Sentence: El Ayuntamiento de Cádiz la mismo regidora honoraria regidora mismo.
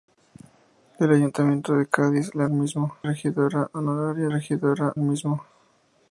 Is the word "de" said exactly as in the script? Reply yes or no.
yes